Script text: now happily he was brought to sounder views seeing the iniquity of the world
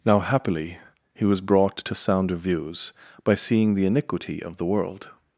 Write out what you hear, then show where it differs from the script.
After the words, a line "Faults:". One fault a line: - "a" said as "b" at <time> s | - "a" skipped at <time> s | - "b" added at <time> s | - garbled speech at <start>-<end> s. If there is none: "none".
now happily he was brought to sounder views by seeing the iniquity of the world
Faults:
- "by" added at 3.2 s